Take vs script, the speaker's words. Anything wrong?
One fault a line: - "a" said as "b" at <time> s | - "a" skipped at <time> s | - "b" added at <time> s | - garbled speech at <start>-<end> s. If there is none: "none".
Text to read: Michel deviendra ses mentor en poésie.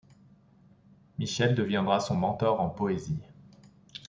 - "ses" said as "son" at 2.0 s